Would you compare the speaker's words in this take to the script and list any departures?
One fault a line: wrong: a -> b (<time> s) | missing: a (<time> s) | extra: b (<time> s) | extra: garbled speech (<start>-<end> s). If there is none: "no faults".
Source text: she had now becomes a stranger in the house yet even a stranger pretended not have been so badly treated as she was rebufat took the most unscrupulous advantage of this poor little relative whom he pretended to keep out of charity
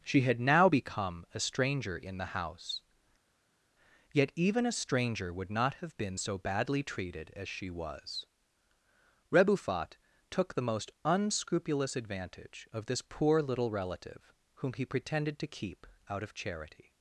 wrong: becomes -> become (0.6 s)
wrong: pretended -> would (5.3 s)